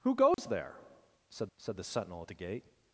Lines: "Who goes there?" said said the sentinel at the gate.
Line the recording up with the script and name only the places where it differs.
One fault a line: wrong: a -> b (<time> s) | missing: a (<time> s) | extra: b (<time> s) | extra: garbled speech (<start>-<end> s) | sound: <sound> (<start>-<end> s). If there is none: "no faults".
sound: dropout (0.3-0.4 s)